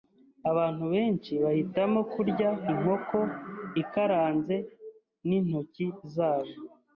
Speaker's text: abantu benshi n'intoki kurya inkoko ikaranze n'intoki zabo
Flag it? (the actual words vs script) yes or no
yes